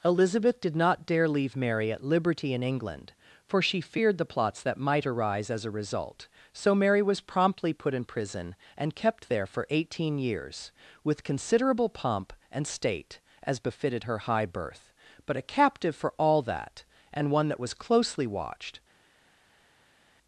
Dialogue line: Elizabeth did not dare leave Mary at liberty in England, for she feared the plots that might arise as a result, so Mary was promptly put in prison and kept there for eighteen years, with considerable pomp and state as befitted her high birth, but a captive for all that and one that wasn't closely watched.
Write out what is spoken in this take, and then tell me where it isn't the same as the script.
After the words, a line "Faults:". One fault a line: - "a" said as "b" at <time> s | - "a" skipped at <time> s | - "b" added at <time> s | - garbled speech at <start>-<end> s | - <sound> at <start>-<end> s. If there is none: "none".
Elizabeth did not dare leave Mary at liberty in England, for she feared the plots that might arise as a result, so Mary was promptly put in prison and kept there for eighteen years, with considerable pomp and state as befitted her high birth, but a captive for all that and one that was closely watched.
Faults:
- "wasn't" said as "was" at 17.6 s